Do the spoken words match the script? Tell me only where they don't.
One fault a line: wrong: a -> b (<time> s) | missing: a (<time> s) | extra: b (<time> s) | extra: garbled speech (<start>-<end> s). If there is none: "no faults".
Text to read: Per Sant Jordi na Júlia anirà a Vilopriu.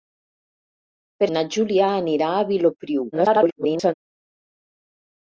missing: Sant Jordi (1.3 s)
extra: garbled speech (3.1-3.9 s)